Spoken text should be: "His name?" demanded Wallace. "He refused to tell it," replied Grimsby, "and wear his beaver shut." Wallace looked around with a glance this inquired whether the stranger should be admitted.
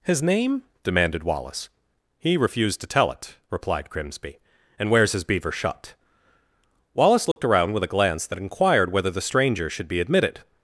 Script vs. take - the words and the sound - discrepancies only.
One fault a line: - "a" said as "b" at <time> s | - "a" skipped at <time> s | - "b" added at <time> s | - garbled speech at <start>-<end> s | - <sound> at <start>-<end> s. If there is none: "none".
- "wear" said as "wears" at 4.9 s
- dropout at 7.3-7.4 s
- "this" said as "that" at 8.3 s